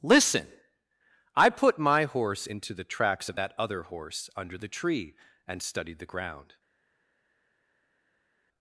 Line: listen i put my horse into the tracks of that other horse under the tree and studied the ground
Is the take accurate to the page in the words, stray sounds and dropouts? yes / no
yes